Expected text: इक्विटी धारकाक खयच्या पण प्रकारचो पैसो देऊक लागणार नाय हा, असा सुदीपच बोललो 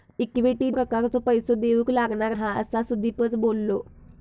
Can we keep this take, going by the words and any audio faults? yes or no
no